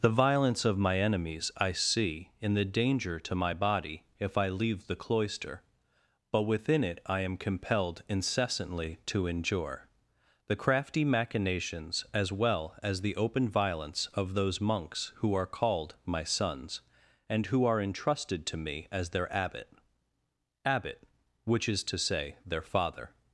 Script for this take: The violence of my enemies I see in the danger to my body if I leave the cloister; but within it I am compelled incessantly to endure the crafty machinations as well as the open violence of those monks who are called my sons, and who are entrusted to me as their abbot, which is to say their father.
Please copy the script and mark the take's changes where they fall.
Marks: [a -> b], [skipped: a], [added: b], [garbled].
The violence of my enemies I see in the danger to my body if I leave the cloister; but within it I am compelled incessantly to endure the crafty machinations as well as the open violence of those monks who are called my sons, and who are entrusted to me as their abbot, [added: abbot] which is to say their father.